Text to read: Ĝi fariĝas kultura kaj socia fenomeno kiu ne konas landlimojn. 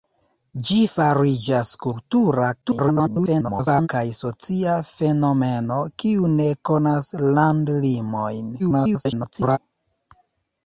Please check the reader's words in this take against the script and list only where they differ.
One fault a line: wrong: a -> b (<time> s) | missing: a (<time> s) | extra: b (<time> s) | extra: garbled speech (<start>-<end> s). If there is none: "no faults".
extra: garbled speech (2.6-3.9 s)
extra: garbled speech (8.6-9.6 s)